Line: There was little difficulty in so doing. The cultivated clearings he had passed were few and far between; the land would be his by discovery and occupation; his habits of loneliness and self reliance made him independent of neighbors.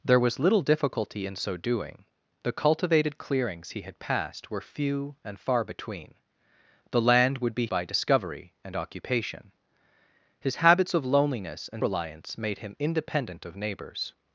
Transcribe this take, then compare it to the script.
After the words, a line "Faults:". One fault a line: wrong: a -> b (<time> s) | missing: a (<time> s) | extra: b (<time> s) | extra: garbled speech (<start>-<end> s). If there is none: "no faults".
There was little difficulty in so doing. The cultivated clearings he had passed were few and far between; the land would be by discovery and occupation; his habits of loneliness and reliance made him independent of neighbors.
Faults:
missing: his (7.7 s)
missing: self (11.8 s)